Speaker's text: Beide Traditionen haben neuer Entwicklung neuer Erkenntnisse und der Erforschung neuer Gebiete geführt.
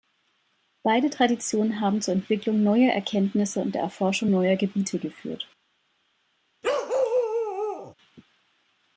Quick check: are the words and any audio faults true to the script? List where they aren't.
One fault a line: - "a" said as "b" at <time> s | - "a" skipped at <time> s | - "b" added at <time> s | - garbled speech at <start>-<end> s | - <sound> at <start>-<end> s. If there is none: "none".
- "neuer" said as "zur" at 2.0 s
- bark at 6.6-7.9 s